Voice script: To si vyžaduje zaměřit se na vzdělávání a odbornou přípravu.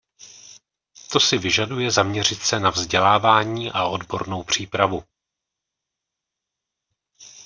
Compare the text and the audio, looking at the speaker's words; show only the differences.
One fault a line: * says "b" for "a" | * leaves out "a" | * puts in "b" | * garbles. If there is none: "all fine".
all fine